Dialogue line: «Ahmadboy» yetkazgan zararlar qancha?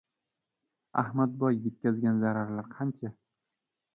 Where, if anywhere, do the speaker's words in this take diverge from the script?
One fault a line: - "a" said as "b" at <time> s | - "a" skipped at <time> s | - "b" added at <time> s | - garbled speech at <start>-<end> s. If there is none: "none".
none